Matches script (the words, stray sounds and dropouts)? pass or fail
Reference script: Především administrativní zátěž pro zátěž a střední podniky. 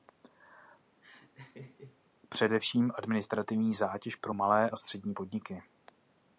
fail